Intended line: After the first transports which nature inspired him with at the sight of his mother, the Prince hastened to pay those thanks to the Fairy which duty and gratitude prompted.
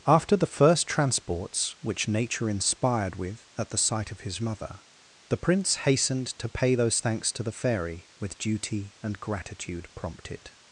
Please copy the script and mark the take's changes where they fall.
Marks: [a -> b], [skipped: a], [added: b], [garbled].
After the first transports which nature inspired [skipped: him] with at the sight of his mother, the Prince hastened to pay those thanks to the Fairy [which -> with] duty and gratitude prompted.